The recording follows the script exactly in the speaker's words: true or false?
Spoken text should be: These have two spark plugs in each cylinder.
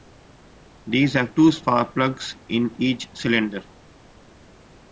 true